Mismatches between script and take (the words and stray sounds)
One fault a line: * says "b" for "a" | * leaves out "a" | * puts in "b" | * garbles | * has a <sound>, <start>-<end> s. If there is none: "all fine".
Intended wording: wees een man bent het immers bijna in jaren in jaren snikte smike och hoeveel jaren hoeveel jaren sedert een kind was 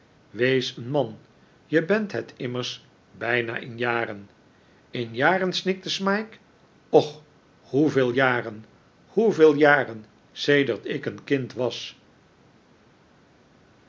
* puts in "je"
* puts in "ik"